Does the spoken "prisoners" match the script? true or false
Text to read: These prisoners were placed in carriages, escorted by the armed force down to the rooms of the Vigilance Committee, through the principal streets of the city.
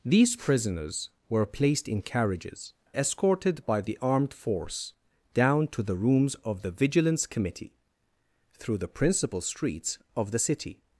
true